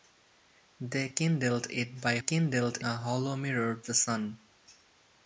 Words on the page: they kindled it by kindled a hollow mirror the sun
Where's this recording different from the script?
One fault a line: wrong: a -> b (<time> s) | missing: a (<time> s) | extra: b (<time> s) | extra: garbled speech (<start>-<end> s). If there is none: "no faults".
no faults